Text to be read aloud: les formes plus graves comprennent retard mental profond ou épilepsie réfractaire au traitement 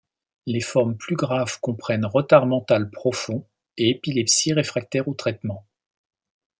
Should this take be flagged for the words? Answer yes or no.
yes